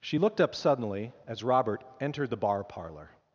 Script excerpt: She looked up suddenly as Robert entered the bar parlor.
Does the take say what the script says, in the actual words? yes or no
yes